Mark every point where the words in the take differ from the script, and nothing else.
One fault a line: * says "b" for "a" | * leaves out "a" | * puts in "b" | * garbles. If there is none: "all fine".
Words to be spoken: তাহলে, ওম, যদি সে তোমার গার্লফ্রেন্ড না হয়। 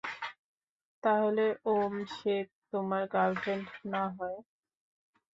* leaves out "যদি"